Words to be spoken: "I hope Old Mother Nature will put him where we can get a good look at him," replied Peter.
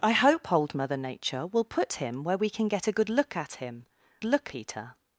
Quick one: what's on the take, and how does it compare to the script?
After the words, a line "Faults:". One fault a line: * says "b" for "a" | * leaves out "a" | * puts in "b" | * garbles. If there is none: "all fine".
"I hope Old Mother Nature will put him where we can get a good look at him," look Peter.
Faults:
* says "look" for "replied"